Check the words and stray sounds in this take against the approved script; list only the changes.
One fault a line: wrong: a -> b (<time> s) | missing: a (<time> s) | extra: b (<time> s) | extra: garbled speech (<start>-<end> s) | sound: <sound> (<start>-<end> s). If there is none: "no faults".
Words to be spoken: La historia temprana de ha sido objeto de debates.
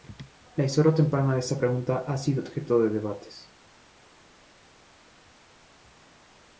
extra: esta pregunta (1.4 s)